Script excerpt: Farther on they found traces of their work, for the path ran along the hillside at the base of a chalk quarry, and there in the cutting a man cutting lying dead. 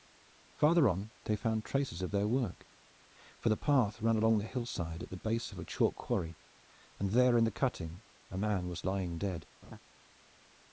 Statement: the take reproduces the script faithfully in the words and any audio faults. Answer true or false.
false